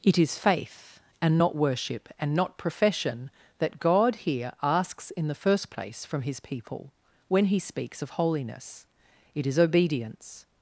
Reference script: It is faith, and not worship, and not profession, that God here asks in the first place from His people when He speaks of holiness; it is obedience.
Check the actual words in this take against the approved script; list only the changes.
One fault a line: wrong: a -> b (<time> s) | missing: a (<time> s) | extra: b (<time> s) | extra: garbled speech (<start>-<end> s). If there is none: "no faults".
no faults